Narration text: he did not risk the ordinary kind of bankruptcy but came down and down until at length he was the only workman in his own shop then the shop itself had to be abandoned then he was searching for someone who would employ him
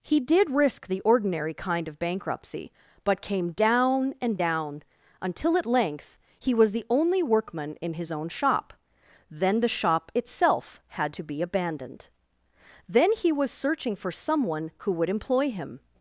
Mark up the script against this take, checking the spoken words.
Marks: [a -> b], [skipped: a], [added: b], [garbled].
he did [skipped: not] risk the ordinary kind of bankruptcy but came down and down until at length he was the only workman in his own shop then the shop itself had to be abandoned then he was searching for someone who would employ him